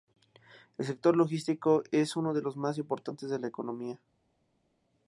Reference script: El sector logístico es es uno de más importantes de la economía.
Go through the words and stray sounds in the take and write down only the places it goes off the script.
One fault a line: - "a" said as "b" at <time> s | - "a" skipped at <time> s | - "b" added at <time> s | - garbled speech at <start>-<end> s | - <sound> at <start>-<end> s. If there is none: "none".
- "es" skipped at 2.1 s
- "los" added at 2.4 s